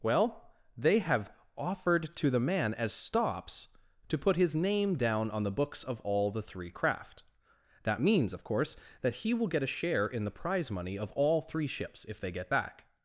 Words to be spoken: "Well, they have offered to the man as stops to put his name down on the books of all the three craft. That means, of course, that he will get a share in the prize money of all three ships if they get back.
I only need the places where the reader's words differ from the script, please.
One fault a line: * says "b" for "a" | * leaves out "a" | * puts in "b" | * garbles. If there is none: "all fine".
all fine